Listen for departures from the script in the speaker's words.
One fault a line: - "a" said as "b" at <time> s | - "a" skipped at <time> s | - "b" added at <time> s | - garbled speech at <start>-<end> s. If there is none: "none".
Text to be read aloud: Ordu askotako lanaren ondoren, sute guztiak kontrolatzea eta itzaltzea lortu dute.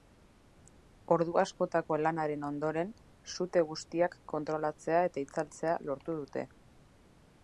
none